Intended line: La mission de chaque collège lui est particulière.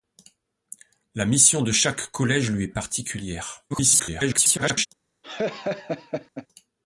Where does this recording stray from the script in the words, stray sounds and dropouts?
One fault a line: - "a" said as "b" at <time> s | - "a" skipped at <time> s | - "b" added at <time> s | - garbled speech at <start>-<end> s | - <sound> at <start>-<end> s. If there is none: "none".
- garbled speech at 3.7-4.9 s
- laugh at 5.2-6.5 s